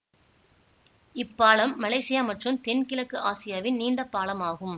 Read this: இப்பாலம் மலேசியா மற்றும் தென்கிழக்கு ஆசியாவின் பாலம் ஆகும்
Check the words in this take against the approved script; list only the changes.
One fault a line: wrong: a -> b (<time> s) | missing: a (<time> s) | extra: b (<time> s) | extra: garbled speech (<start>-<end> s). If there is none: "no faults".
extra: நீண்ட (3.8 s)